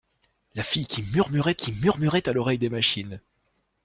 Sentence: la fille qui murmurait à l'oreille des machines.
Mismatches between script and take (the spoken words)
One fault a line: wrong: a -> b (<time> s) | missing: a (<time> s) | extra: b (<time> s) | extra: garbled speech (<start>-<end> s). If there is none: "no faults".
extra: qui murmurait (1.5 s)